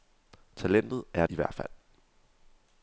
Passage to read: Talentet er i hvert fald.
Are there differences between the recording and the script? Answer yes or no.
no